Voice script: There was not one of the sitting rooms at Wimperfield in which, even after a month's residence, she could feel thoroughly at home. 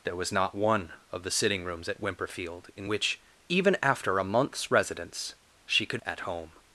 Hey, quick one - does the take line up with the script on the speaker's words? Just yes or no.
no